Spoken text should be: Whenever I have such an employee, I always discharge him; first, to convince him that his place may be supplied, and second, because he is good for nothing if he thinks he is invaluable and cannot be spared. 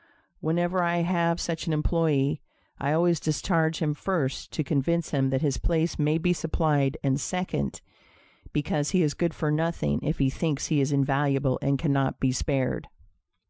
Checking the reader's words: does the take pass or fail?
pass